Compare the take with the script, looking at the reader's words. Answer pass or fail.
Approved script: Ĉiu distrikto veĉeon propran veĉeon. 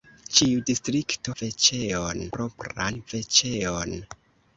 pass